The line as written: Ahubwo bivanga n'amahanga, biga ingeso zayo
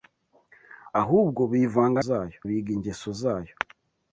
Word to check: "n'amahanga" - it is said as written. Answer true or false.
false